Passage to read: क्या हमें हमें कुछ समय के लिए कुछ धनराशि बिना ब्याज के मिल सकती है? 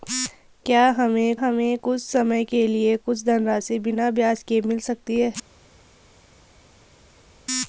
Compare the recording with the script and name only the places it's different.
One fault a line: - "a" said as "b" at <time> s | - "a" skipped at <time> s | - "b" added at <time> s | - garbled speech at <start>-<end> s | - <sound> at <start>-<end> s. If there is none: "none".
none